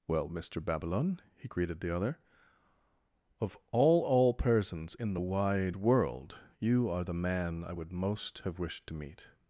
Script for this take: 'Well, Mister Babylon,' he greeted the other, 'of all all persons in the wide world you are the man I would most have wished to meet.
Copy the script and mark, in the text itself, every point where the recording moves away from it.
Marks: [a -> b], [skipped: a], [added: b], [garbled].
'Well, Mister Babylon,' he greeted the other, 'of all all persons in the wide world you are the man I would most have wished to meet.